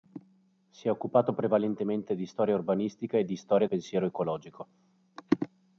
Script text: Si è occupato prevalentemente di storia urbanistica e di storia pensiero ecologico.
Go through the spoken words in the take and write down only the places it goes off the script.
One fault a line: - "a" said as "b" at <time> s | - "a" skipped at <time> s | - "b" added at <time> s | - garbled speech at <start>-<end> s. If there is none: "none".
none